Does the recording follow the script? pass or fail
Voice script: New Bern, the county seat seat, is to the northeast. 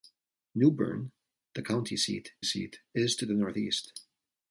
pass